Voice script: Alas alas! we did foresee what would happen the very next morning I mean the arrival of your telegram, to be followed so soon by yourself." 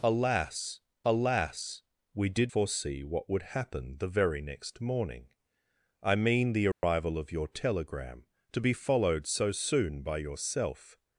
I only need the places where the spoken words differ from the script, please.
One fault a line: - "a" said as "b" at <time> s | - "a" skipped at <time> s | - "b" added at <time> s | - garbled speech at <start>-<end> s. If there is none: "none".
none